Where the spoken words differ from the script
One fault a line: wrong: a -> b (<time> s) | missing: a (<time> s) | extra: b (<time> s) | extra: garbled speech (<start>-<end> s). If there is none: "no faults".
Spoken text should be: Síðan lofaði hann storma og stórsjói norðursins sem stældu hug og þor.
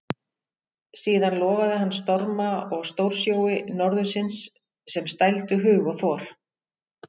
no faults